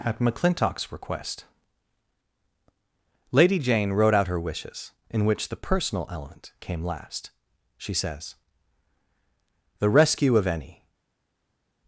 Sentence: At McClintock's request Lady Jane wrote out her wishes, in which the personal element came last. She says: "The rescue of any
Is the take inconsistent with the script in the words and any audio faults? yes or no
no